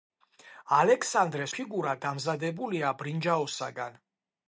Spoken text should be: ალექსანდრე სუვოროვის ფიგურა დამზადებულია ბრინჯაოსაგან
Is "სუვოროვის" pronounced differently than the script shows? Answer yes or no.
yes